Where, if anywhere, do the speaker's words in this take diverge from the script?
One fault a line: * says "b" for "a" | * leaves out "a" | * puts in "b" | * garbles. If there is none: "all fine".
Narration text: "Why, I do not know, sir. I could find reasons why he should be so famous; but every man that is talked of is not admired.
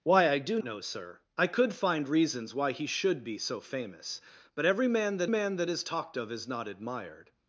* leaves out "not"
* puts in "man that"